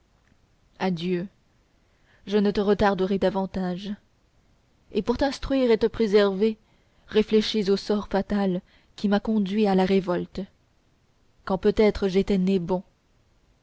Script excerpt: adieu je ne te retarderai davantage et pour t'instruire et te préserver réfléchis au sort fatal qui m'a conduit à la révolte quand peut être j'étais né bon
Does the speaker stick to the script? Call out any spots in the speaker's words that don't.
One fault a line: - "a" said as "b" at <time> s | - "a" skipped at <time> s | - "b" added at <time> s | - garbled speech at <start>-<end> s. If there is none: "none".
none